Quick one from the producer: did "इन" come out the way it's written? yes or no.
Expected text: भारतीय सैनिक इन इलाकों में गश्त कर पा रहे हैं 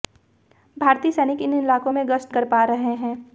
yes